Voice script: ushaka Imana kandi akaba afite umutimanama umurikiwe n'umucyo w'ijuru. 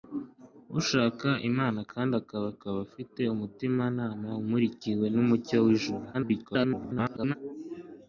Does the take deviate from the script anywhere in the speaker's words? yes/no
yes